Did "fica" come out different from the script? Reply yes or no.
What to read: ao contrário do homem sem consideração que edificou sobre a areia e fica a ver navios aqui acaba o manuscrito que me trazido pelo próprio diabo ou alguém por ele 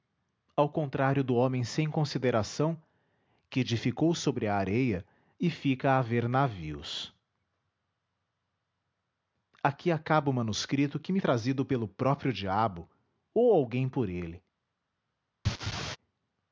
no